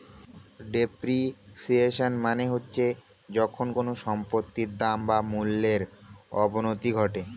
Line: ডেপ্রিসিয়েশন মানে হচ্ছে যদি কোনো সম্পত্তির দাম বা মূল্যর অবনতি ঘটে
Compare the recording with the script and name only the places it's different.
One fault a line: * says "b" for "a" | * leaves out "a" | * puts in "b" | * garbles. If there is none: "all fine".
* says "যখন" for "যদি"